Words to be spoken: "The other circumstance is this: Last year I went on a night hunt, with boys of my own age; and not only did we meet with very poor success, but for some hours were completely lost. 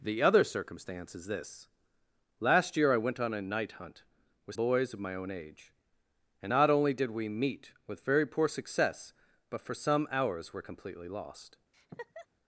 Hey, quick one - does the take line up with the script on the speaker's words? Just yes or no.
yes